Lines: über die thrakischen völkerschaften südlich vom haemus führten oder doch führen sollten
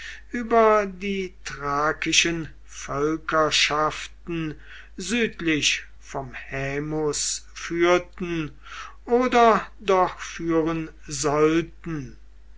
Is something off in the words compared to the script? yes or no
no